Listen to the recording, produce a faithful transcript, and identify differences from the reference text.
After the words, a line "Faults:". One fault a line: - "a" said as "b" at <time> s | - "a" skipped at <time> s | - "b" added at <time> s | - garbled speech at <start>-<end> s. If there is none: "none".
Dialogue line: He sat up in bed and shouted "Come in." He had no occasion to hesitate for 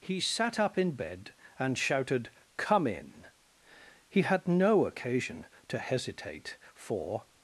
He sat up in bed and shouted "Come in." He had no occasion to hesitate for
Faults:
none